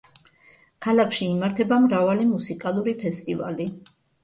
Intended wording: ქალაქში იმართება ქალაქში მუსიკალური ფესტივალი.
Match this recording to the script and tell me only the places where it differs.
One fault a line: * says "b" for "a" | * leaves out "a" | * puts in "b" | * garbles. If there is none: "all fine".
* says "მრავალი" for "ქალაქში"